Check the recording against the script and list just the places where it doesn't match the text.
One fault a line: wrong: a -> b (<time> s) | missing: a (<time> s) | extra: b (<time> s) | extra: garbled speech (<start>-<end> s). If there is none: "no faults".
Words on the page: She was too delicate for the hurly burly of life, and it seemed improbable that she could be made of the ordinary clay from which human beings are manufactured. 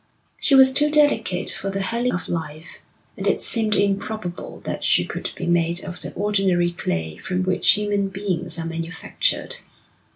missing: burly (2.1 s)